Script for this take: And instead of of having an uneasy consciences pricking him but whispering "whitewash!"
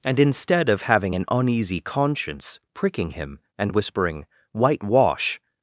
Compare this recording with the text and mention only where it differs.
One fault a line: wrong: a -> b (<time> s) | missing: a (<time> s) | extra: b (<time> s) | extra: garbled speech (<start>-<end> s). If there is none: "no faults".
missing: of (0.8 s)
wrong: consciences -> conscience (1.8 s)
wrong: but -> and (3.6 s)